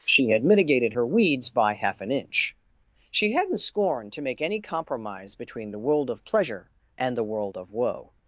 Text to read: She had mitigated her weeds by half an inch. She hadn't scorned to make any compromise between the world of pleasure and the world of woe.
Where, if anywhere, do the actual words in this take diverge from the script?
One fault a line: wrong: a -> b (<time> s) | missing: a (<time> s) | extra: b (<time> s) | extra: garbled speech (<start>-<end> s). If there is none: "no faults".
no faults